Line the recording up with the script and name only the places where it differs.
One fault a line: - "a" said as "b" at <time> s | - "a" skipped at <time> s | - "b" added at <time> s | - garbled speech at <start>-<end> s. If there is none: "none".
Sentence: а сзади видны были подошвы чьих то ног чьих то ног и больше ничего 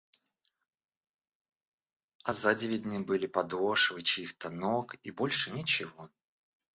- "чьих то ног" skipped at 4.9 s